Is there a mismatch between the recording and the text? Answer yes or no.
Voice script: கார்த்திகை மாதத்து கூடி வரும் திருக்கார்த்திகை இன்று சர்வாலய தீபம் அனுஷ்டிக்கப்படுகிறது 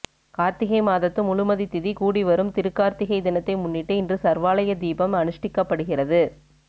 yes